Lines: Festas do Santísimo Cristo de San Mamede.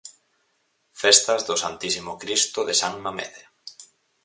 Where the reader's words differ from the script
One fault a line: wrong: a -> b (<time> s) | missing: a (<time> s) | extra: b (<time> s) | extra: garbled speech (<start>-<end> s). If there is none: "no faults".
no faults